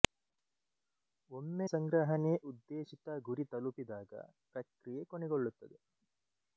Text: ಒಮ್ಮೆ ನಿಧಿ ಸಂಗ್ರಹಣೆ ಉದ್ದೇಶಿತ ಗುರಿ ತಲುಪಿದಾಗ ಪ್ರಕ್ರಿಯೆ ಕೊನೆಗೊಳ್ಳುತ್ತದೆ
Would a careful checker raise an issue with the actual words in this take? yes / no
yes